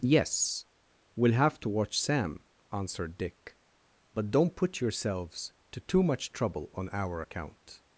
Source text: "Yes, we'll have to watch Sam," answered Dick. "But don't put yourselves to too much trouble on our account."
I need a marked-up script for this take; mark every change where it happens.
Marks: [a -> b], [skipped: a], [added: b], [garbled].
"Yes, we'll have to watch Sam," answered Dick. "But don't put yourselves to too much trouble on our account."